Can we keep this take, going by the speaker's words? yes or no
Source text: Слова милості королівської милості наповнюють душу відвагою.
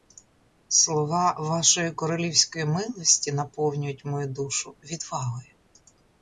no